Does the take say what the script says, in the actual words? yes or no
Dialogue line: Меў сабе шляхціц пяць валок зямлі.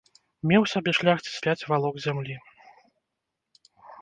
yes